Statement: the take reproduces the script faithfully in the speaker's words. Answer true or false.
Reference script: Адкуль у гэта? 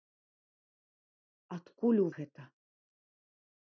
true